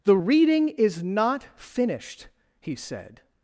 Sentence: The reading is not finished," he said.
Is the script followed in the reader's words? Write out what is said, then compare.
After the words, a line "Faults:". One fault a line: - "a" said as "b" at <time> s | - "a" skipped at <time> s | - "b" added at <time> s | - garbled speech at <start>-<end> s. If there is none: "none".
The reading is not finished," he said.
Faults:
none